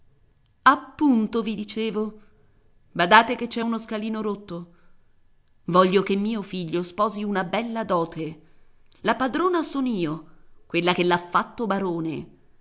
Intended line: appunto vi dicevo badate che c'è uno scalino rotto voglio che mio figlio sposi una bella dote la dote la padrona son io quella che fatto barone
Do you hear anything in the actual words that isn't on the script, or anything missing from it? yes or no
yes